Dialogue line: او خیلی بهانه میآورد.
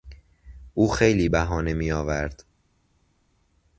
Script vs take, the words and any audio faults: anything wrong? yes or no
no